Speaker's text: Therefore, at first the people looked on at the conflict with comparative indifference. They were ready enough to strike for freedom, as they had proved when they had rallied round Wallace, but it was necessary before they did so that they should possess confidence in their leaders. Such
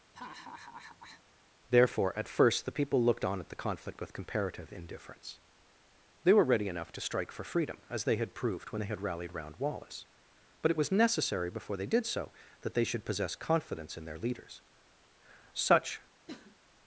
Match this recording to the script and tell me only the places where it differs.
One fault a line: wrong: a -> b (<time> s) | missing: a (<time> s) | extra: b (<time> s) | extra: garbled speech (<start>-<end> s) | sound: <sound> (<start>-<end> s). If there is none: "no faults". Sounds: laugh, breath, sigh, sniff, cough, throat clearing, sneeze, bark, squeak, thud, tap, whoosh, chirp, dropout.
sound: laugh (0.1-1.2 s)
sound: cough (16.3-16.6 s)